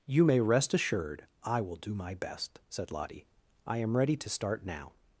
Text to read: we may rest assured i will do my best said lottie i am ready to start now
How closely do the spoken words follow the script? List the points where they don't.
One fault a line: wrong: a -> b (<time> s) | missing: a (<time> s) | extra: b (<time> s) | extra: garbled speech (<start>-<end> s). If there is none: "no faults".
wrong: we -> you (0.1 s)